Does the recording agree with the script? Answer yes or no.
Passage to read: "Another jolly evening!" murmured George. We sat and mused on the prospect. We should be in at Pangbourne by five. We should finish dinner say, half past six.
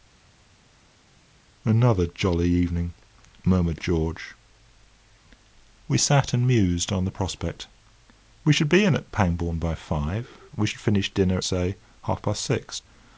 yes